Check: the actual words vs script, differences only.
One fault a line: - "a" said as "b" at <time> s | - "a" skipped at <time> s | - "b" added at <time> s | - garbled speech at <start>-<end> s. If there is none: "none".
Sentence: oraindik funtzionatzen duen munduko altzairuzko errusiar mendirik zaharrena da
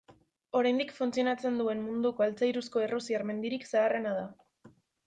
none